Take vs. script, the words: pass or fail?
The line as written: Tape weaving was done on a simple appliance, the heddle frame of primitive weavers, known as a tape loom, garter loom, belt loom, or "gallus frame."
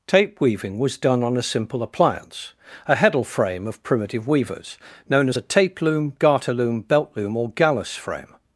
fail